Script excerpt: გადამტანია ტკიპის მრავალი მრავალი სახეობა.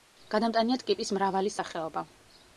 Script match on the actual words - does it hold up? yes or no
no